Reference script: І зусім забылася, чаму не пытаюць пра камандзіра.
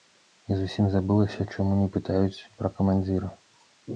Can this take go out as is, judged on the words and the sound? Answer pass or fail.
pass